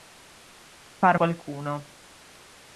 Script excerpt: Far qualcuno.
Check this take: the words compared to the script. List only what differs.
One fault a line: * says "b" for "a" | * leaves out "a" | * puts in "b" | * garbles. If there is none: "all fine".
all fine